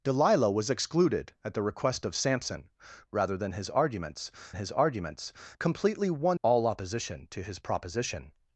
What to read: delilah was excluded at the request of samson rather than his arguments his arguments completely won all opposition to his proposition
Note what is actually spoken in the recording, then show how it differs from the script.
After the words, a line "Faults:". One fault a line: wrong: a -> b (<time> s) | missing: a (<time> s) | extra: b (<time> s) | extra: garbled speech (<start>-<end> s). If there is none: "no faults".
delilah was excluded at the request of samson rather than his arguments his arguments completely won all opposition to his proposition
Faults:
no faults